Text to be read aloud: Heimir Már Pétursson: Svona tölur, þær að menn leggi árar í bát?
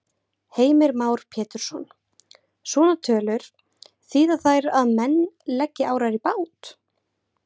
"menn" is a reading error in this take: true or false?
false